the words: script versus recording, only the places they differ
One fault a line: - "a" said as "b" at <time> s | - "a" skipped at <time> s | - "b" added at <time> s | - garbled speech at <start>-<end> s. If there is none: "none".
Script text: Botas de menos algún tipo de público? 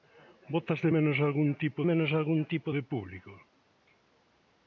- "menos algún tipo" added at 1.9 s